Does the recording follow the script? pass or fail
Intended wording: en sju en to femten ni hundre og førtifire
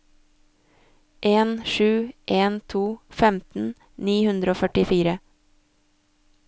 pass